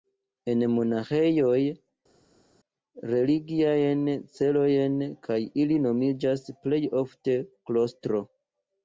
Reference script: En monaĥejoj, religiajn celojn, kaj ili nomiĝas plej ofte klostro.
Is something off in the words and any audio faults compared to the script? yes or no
no